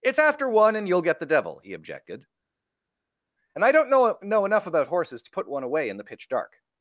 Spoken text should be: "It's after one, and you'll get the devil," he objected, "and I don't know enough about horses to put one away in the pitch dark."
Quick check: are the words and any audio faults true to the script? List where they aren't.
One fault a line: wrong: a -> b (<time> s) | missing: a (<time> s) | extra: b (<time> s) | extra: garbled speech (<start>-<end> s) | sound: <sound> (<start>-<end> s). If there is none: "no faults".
extra: know (4.2 s)